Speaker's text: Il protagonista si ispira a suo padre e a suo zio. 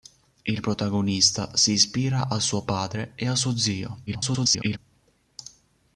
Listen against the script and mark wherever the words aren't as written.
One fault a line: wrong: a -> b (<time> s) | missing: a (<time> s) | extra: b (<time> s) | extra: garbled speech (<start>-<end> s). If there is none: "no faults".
extra: garbled speech (4.1-4.8 s)